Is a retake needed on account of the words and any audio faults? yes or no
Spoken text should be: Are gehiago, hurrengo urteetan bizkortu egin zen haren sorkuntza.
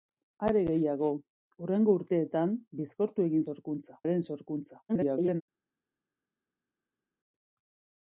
yes